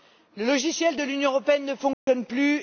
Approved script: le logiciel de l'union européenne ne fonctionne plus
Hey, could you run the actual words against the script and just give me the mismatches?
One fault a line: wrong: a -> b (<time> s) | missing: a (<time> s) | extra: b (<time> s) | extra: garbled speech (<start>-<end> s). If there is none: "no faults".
no faults